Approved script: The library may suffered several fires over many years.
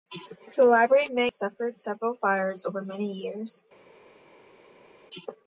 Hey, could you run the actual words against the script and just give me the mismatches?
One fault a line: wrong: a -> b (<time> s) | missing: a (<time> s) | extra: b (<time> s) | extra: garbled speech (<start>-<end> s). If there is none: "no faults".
no faults